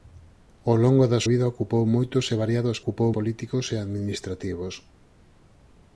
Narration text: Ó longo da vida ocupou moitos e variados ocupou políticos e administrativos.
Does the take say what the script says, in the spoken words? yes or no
yes